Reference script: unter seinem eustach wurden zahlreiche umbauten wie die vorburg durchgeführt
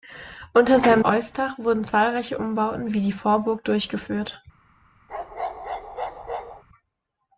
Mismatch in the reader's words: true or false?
false